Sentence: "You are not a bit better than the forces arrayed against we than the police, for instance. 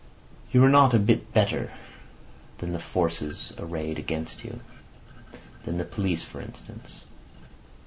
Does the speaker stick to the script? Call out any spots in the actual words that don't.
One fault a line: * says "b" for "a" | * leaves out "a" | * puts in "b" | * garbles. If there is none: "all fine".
* says "you" for "we"